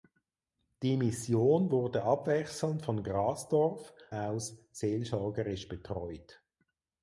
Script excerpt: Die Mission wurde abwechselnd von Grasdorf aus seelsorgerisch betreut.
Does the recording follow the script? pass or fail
pass